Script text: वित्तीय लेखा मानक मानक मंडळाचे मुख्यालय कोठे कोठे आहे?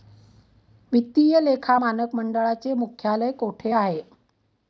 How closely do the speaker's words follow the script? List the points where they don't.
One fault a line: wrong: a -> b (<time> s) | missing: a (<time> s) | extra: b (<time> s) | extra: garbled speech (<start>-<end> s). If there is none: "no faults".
missing: मानक (2.1 s)
missing: कोठे (3.7 s)